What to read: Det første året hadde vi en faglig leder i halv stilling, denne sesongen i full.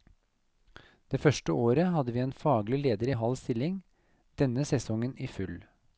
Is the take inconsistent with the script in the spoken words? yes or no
no